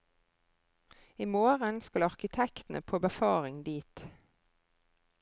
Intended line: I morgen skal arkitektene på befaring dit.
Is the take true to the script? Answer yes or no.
yes